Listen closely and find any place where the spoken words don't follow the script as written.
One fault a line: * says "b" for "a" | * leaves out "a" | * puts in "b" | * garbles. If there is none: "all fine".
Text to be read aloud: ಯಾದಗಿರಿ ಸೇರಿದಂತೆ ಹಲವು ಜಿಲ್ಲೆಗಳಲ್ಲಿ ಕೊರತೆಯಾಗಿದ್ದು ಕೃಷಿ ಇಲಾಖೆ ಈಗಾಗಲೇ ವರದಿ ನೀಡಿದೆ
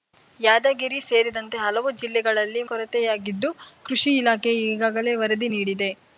all fine